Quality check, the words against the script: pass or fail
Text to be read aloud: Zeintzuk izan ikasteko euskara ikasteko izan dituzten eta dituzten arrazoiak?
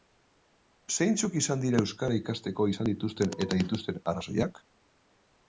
fail